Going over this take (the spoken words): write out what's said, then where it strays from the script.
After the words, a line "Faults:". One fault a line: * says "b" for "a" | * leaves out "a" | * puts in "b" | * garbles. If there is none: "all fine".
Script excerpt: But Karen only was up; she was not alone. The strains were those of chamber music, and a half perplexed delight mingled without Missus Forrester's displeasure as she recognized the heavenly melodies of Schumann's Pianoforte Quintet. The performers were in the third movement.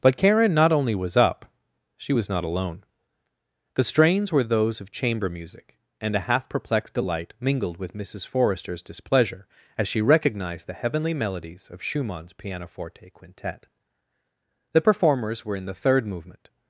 But Karen not only was up; she was not alone. The strains were those of chamber music, and a half perplexed delight mingled with Missus Forrester's displeasure as she recognized the heavenly melodies of Schumann's Pianoforte Quintet. The performers were in the third movement.
Faults:
* puts in "not"
* says "with" for "without"